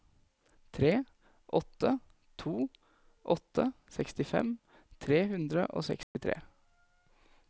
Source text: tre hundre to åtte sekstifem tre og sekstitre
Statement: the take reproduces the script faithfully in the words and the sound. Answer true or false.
false